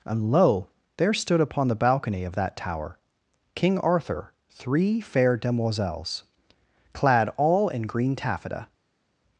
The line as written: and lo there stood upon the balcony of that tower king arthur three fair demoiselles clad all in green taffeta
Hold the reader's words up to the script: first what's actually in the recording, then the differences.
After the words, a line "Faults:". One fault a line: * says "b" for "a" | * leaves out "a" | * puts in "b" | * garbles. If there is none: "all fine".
and lo there stood upon the balcony of that tower king arthur three fair demoiselles clad all in green taffeta
Faults:
all fine